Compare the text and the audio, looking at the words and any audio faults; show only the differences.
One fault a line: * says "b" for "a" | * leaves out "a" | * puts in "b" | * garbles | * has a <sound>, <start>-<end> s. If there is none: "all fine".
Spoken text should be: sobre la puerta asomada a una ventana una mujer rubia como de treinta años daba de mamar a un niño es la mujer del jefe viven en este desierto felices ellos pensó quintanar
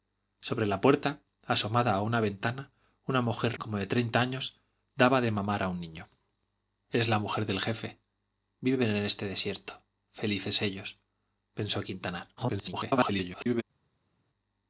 * leaves out "rubia"
* garbles